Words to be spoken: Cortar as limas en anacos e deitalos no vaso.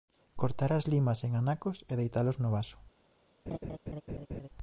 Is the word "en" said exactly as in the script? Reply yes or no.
yes